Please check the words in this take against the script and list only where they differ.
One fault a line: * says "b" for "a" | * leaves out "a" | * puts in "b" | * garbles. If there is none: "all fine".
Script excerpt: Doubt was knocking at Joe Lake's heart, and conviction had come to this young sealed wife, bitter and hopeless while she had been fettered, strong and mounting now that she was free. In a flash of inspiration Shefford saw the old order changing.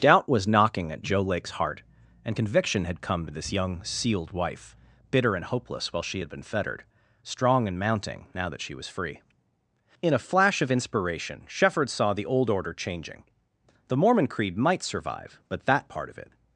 * puts in "The Mormon creed might survive but that part of it"